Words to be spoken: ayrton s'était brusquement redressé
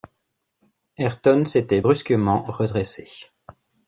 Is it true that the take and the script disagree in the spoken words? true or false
false